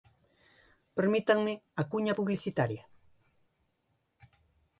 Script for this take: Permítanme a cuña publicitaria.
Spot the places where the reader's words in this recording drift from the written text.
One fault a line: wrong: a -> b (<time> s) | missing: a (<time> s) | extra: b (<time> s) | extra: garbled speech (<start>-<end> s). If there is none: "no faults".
no faults